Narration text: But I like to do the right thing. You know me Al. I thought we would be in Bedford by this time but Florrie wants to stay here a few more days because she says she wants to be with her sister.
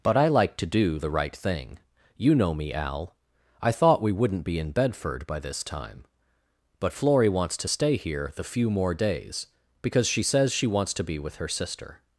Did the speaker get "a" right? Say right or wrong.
wrong